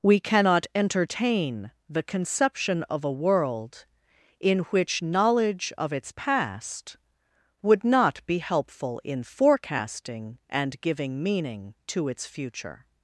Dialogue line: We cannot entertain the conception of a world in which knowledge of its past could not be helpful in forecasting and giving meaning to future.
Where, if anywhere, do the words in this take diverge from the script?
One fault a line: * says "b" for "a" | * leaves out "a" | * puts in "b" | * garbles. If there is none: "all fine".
* says "would" for "could"
* puts in "its"